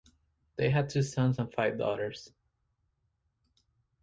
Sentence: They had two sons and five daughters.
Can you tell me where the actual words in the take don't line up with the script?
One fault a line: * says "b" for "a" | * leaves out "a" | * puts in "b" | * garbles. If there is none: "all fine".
all fine